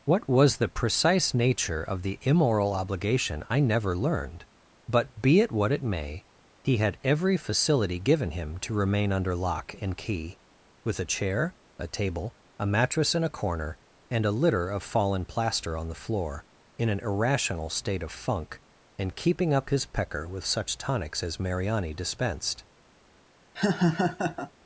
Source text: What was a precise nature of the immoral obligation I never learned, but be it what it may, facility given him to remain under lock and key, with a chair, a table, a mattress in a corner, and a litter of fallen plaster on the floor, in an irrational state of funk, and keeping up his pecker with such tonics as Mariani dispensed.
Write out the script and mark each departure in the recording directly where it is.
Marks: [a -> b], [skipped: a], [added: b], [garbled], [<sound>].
What was [a -> the] precise nature of the immoral obligation I never learned, but be it what it may, [added: he had every] facility given him to remain under lock and key, with a chair, a table, a mattress in a corner, and a litter of fallen plaster on the floor, in an irrational state of funk, and keeping up his pecker with such tonics as Mariani dispensed. [laugh]